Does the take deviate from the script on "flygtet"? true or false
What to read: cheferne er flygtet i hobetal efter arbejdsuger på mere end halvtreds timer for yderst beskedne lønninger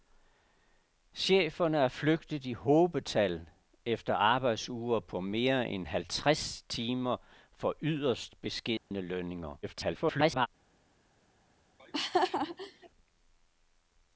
false